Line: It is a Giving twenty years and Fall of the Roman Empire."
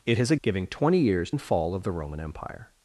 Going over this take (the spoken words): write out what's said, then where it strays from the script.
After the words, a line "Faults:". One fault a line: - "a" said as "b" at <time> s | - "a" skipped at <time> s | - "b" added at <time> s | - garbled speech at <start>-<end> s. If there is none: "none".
It is a Giving twenty years and Fall of the Roman Empire."
Faults:
none